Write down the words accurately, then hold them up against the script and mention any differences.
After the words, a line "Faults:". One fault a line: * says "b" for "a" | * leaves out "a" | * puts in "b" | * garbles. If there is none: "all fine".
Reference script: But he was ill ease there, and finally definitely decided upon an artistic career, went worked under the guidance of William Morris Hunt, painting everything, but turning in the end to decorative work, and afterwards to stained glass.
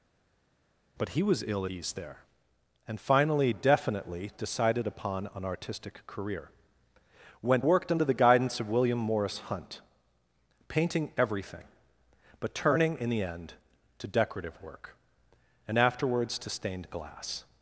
But he was ill ease there, and finally definitely decided upon an artistic career, went worked under the guidance of William Morris Hunt, painting everything, but turning in the end to decorative work, and afterwards to stained glass.
Faults:
all fine